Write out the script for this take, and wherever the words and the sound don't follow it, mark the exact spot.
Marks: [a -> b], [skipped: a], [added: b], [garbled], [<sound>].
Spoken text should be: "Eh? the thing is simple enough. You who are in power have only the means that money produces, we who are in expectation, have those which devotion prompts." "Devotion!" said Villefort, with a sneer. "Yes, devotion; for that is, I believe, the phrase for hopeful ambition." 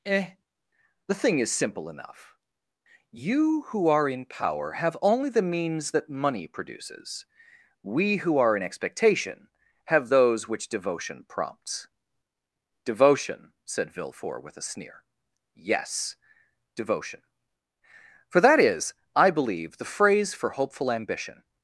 "Eh? the thing is simple enough. You who are in power have only the means that money produces, we who are in expectation, have those which devotion prompts." "Devotion!" said Villefort, with a sneer. "Yes, devotion; for that is, I believe, the phrase for hopeful ambition."